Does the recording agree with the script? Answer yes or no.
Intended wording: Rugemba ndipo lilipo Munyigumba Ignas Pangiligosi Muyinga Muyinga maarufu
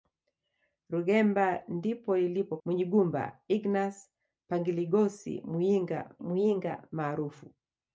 yes